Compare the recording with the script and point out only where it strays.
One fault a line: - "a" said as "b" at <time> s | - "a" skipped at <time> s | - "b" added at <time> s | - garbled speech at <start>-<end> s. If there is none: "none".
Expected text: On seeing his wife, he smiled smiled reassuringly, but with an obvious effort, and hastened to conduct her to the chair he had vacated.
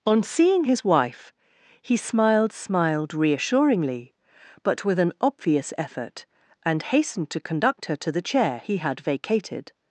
none